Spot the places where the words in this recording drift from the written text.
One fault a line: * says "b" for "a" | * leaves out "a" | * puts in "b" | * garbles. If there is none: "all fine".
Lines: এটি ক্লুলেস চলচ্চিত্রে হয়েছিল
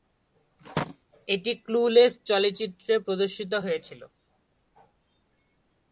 * puts in "প্রদর্শিত"